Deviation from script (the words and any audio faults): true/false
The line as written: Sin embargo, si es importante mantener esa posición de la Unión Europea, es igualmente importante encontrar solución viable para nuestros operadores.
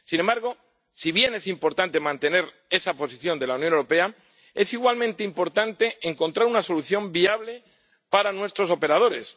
true